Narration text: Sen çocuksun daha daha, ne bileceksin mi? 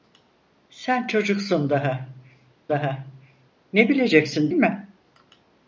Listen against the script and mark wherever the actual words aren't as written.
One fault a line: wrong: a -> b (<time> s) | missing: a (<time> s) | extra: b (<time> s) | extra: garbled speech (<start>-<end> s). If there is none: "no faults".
no faults